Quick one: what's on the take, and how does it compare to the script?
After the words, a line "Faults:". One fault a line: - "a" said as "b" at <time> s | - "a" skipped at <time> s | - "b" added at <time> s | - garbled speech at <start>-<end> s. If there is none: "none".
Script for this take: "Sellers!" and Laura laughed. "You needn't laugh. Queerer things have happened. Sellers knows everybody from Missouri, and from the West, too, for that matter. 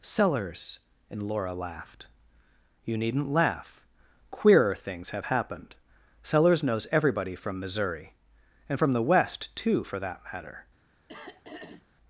"Sellers!" and Laura laughed. "You needn't laugh. Queerer things have happened. Sellers knows everybody from Missouri, and from the West, too, for that matter.
Faults:
none